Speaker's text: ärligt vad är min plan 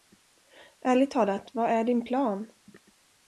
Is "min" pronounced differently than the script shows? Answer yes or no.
yes